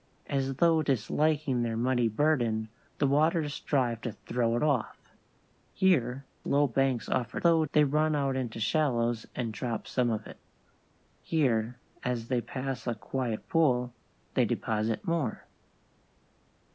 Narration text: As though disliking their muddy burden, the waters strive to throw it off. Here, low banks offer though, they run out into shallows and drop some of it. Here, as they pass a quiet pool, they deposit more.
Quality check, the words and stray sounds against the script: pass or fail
pass